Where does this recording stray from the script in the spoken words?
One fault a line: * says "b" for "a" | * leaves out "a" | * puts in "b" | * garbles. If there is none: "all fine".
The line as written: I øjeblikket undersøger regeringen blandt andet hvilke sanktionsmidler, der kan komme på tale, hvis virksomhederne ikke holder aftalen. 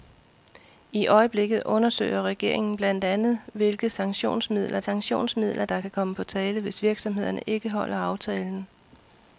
* puts in "sanktionsmidler"